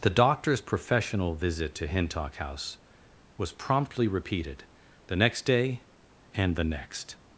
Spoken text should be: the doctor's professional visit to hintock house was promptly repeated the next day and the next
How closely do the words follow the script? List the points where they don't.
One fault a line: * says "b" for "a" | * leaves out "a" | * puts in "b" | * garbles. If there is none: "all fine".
all fine